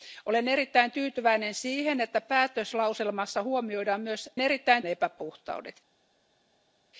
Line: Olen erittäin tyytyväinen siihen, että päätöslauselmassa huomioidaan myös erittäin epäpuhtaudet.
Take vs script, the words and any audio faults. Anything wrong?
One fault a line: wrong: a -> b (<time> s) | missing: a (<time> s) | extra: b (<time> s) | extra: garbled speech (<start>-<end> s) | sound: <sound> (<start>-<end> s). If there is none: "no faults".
no faults